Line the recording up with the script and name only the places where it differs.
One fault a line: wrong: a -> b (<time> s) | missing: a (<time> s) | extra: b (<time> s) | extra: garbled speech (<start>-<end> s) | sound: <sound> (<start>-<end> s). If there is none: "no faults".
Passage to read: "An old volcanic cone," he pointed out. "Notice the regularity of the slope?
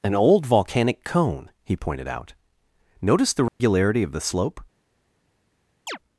sound: dropout (3.5-3.6 s)
sound: chirp (5.9-6.0 s)